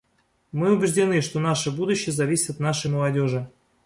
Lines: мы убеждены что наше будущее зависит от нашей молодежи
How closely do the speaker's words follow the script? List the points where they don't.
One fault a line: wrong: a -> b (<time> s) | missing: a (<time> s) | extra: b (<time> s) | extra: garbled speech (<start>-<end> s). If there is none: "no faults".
no faults